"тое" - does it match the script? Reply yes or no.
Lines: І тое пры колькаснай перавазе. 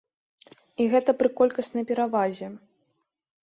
no